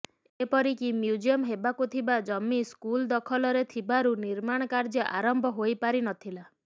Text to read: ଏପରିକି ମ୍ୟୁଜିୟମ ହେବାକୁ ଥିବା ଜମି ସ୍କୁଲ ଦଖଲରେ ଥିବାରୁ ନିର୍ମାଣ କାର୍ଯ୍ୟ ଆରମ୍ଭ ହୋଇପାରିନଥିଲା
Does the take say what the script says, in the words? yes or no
yes